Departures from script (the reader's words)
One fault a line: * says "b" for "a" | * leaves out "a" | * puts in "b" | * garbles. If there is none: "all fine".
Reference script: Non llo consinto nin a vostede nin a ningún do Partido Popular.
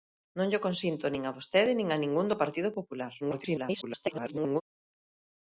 * garbles